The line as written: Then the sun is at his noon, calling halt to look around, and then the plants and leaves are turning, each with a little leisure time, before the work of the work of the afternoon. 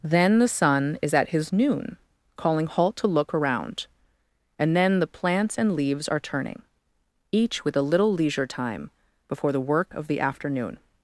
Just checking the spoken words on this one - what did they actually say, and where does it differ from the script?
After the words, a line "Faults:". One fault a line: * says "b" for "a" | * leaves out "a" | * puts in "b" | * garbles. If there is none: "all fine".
Then the sun is at his noon, calling halt to look around, and then the plants and leaves are turning, each with a little leisure time, before the work of the afternoon.
Faults:
* leaves out "work of the"